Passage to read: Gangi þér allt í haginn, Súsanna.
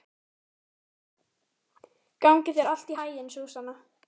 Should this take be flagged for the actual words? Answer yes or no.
no